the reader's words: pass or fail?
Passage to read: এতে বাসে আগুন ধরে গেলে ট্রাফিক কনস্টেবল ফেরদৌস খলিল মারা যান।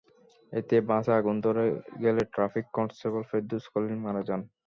pass